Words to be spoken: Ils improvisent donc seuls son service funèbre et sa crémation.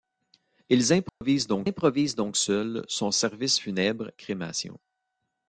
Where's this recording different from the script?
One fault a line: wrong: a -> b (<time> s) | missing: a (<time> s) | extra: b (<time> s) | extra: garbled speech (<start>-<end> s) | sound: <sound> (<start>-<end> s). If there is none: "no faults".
sound: dropout (1.1-1.2 s)
extra: improvisent donc (1.6 s)
missing: et sa (4.1 s)